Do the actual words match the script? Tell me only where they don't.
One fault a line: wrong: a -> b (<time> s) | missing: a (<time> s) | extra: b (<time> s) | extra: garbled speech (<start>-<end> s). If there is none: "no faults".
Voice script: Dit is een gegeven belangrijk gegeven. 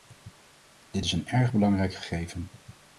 wrong: gegeven -> erg (1.3 s)